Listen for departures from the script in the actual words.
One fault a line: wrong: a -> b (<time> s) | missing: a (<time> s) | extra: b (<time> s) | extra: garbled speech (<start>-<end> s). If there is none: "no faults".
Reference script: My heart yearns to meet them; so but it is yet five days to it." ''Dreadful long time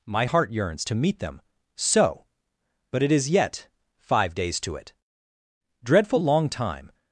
no faults